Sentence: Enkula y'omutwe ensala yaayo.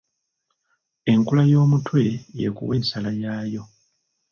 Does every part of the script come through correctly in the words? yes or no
no